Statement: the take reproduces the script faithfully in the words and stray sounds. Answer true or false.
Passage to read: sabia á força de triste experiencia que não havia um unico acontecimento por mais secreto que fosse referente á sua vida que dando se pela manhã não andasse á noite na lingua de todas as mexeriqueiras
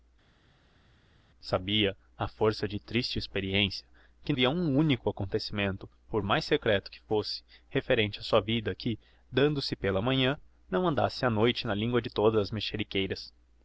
false